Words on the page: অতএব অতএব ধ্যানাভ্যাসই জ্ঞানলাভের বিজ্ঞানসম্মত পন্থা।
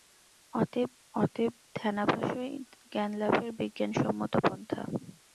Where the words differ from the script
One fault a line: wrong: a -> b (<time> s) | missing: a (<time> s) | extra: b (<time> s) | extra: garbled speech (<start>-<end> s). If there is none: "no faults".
no faults